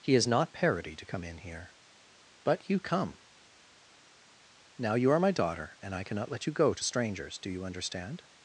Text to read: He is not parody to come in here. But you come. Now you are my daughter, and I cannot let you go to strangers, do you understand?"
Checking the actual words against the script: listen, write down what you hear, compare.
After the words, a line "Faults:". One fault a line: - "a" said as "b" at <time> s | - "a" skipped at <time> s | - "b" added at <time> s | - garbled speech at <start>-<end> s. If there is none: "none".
He is not parody to come in here. But you come. Now you are my daughter, and I cannot let you go to strangers, do you understand?"
Faults:
none